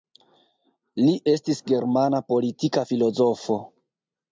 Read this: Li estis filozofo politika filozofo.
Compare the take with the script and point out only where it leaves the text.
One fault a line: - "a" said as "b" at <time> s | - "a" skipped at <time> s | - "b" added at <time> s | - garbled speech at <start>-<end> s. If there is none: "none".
- "filozofo" said as "germana" at 1.7 s